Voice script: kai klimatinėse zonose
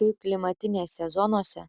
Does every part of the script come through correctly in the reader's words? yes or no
yes